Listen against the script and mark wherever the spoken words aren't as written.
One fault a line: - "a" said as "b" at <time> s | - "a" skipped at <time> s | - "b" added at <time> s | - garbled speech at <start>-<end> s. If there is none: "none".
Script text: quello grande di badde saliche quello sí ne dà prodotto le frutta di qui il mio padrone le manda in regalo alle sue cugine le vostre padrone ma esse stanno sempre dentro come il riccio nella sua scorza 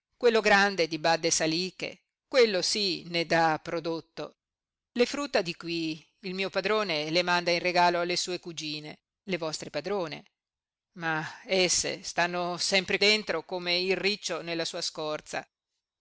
none